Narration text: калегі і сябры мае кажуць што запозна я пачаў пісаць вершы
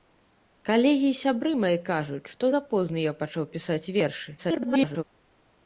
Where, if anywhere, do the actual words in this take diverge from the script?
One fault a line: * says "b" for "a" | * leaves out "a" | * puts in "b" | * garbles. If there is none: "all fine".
* garbles